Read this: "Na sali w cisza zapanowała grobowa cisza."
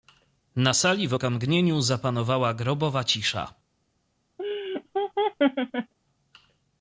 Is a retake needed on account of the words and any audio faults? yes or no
yes